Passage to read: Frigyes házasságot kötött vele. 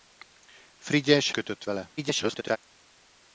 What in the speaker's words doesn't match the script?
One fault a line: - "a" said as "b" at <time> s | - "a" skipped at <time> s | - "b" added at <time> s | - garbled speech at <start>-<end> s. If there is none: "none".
- "házasságot" skipped at 1.3 s
- garbled speech at 2.0-2.6 s